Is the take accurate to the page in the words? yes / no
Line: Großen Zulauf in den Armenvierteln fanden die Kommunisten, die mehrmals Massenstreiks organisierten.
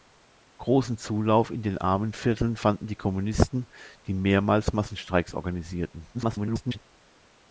no